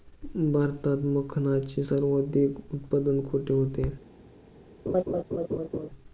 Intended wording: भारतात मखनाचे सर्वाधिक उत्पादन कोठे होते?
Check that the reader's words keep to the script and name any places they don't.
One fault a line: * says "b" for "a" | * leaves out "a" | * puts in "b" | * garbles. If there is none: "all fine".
all fine